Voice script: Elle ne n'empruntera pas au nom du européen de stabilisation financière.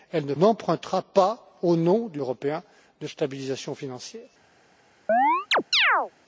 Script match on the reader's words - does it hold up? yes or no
yes